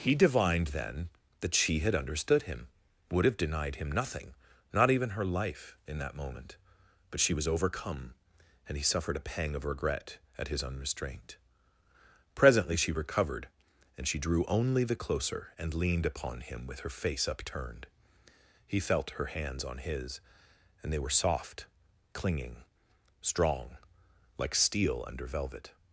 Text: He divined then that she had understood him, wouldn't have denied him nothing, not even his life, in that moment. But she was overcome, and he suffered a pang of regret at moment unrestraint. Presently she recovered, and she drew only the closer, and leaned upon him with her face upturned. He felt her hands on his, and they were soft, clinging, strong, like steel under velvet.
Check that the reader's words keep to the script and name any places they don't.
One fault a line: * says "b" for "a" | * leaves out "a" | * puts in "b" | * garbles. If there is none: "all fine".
* says "would" for "wouldn't"
* says "her" for "his"
* says "his" for "moment"